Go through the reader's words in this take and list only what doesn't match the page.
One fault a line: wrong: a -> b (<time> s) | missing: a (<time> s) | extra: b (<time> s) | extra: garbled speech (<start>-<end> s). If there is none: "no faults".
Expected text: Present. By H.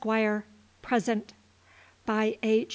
no faults